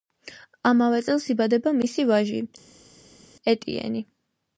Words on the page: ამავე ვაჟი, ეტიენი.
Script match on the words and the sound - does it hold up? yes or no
no